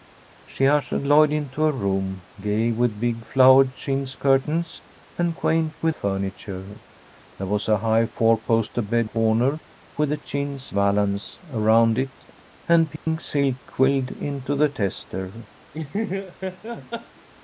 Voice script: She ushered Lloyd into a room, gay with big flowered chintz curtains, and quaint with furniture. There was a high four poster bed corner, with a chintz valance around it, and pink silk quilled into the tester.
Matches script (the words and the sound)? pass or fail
fail